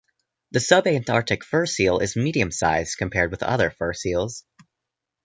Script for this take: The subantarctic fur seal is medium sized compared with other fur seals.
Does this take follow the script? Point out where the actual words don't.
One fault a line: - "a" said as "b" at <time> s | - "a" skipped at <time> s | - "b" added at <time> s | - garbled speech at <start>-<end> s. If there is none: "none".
none